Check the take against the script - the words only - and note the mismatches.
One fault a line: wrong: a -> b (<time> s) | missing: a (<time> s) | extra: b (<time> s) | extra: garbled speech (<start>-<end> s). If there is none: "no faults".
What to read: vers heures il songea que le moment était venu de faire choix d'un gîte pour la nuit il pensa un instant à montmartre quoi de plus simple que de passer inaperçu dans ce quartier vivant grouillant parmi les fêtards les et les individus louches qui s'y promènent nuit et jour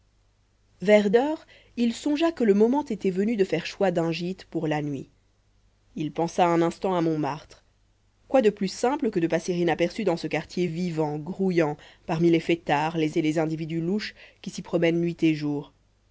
no faults